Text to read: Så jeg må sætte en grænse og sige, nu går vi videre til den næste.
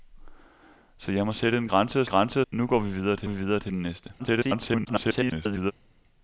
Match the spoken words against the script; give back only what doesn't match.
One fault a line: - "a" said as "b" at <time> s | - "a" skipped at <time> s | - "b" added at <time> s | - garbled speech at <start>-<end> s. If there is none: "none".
- "sige" said as "grænse" at 2.0 s
- "vi videre til" added at 3.2 s
- garbled speech at 4.2-5.7 s